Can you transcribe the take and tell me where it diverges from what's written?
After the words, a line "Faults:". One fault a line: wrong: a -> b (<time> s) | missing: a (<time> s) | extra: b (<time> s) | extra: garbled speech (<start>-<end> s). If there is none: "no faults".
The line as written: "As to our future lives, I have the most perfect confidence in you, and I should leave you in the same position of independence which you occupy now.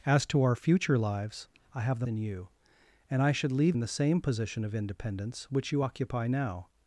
"As to our future lives, I have the in you, and I should leave in the same position of independence which you occupy now.
Faults:
missing: most perfect confidence (2.1 s)
missing: you (3.8 s)